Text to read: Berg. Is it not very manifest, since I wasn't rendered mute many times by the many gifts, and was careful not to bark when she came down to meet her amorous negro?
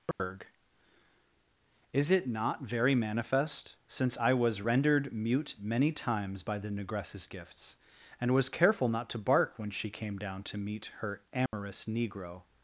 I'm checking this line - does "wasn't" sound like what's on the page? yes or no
no